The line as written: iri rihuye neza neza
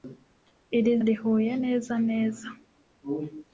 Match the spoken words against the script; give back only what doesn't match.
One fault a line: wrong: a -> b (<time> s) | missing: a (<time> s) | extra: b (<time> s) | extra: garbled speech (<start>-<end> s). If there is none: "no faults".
no faults